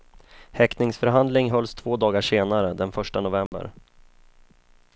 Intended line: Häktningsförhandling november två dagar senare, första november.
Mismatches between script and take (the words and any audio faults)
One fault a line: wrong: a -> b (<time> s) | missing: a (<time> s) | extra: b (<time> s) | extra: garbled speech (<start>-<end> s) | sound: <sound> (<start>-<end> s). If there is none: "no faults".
wrong: november -> hölls (1.5 s)
extra: den (2.7 s)
sound: dropout (3.5-3.5 s)